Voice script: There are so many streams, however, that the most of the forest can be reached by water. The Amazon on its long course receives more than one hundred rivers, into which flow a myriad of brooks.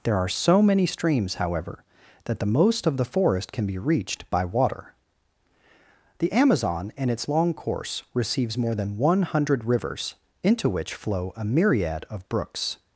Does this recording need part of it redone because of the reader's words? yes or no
yes